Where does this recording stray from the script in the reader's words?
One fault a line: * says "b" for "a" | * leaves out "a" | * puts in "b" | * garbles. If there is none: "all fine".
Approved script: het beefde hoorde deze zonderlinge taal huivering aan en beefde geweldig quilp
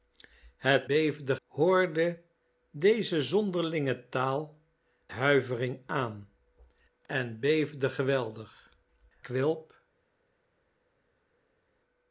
all fine